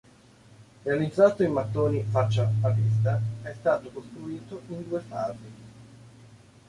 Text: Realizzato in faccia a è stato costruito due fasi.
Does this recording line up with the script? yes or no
no